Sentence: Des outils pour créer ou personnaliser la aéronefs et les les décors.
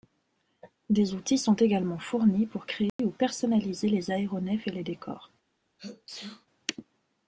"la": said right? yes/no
no